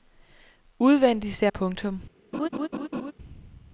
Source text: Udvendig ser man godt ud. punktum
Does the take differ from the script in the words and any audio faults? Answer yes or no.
yes